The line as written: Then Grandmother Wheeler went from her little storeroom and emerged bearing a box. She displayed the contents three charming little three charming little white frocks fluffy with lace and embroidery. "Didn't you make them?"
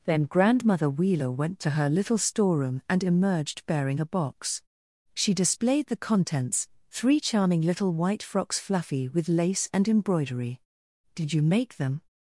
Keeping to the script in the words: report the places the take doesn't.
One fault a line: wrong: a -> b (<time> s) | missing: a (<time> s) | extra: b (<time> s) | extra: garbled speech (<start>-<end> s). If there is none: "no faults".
wrong: from -> to (1.6 s)
missing: three charming little (7.9 s)
wrong: Didn't -> Did (11.1 s)